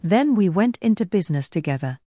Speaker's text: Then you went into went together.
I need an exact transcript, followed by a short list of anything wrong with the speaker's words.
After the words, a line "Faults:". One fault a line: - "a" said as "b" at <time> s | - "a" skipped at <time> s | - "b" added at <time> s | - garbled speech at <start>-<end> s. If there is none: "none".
Then we went into business together.
Faults:
- "you" said as "we" at 0.3 s
- "went" said as "business" at 1.1 s